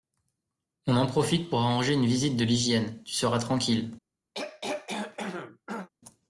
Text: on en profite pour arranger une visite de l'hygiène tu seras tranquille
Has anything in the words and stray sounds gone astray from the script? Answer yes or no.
yes